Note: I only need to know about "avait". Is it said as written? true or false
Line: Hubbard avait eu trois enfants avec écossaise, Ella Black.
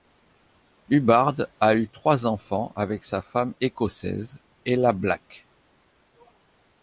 false